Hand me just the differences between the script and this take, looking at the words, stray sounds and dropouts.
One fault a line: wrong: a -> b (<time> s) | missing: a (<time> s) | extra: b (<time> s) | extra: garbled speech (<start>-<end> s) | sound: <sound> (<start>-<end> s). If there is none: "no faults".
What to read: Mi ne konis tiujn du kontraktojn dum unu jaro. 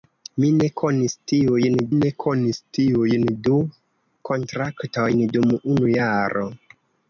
extra: ne konis tiujn (1.9 s)